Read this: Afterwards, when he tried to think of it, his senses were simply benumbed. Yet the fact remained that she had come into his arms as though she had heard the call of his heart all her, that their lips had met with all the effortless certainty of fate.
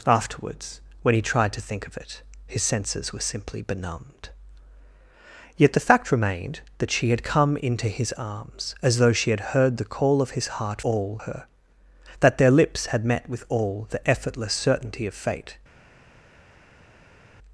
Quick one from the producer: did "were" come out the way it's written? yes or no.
yes